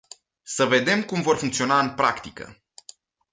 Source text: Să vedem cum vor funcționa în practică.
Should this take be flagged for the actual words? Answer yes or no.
no